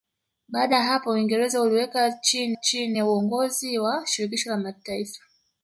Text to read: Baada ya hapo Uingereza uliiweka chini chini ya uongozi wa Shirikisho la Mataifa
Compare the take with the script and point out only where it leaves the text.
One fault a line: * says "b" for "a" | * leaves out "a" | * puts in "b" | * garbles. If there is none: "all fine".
all fine